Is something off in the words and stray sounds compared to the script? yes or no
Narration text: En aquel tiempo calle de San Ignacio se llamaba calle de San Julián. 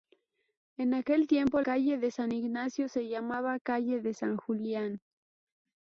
no